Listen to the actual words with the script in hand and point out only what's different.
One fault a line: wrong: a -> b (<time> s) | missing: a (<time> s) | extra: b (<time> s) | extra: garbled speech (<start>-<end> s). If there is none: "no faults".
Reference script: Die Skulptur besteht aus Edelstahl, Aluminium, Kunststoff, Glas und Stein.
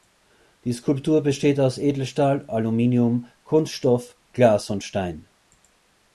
no faults